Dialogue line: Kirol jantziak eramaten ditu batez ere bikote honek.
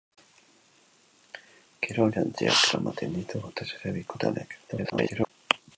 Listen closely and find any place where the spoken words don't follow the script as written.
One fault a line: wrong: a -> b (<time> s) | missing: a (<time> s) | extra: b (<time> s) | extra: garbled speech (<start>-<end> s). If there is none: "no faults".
extra: garbled speech (4.7-5.3 s)